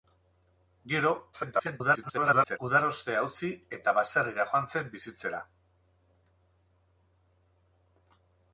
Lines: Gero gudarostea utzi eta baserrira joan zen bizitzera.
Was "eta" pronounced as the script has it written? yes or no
yes